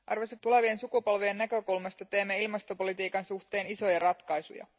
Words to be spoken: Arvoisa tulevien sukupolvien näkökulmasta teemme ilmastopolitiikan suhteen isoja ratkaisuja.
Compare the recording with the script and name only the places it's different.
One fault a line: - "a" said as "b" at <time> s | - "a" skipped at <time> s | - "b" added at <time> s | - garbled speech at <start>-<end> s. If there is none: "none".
none